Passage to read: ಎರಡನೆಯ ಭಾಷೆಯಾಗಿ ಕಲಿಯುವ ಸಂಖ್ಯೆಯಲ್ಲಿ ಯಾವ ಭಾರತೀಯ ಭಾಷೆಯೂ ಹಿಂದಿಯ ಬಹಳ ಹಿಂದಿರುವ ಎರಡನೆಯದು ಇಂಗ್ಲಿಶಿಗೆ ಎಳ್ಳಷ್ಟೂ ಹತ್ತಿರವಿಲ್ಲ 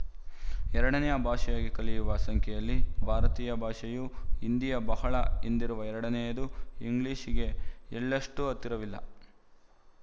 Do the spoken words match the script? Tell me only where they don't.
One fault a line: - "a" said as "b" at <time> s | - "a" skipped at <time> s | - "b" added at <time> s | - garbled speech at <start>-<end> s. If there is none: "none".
- "ಯಾವ" skipped at 2.8 s